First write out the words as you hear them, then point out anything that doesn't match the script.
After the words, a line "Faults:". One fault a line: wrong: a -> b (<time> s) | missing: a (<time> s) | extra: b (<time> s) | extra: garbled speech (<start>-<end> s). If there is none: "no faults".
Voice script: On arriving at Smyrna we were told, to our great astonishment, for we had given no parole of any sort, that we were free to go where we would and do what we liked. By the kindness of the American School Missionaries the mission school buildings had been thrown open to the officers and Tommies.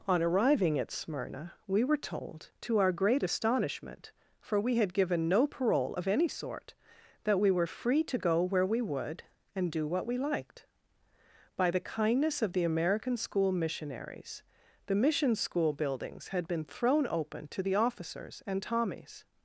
On arriving at Smyrna we were told, to our great astonishment, for we had given no parole of any sort, that we were free to go where we would and do what we liked. By the kindness of the American School Missionaries the mission school buildings had been thrown open to the officers and Tommies.
Faults:
no faults